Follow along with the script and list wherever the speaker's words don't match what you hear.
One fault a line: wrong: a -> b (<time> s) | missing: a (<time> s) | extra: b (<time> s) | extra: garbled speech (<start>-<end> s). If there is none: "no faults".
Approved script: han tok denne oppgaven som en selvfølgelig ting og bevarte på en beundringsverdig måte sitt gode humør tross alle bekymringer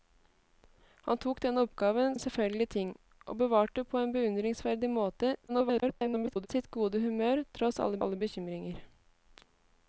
missing: som (2.1 s)
extra: garbled speech (5.5-6.5 s)
extra: alle (8.1 s)